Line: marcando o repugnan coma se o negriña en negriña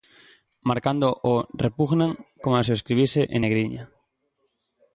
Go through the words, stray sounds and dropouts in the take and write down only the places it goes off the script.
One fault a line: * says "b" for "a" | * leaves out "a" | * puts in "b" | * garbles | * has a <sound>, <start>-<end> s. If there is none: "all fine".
* says "escribise" for "negriña"